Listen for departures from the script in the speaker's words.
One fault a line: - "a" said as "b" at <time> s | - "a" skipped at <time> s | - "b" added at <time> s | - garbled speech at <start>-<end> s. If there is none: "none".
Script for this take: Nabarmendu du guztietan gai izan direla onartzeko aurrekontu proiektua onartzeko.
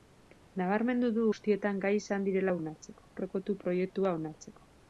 none